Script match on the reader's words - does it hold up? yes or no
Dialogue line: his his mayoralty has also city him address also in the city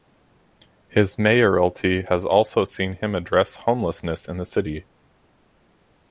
no